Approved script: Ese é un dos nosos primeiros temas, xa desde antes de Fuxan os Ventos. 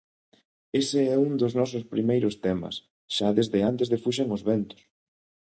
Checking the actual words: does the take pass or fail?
pass